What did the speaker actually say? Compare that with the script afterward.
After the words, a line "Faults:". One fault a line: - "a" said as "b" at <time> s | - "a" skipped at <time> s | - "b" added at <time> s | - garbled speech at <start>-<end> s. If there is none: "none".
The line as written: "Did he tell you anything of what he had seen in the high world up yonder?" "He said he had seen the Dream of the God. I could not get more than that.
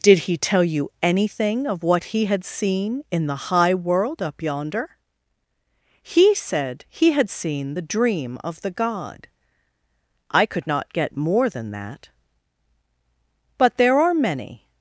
"Did he tell you anything of what he had seen in the high world up yonder?" "He said he had seen the Dream of the God. I could not get more than that. But there are many
Faults:
- "But there are many" added at 13.6 s